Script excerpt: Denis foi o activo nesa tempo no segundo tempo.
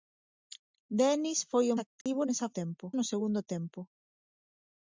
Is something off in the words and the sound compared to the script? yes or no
yes